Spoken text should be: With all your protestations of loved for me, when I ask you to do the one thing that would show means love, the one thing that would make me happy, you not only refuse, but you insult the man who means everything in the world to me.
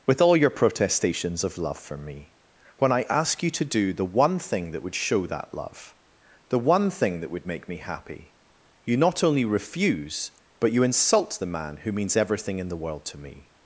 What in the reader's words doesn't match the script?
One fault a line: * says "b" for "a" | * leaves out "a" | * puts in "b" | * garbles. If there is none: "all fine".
* says "love" for "loved"
* says "that" for "means"